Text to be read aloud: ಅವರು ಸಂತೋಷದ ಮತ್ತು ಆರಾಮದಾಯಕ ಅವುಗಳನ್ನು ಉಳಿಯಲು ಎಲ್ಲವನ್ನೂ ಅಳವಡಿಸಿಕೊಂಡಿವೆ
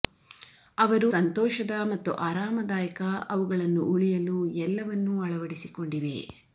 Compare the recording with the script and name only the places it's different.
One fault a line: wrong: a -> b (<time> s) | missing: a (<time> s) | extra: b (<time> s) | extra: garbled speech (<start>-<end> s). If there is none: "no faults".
no faults